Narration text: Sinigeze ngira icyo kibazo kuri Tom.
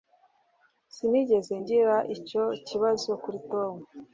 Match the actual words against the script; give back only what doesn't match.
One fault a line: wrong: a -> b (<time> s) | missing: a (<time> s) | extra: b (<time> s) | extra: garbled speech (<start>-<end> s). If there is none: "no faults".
no faults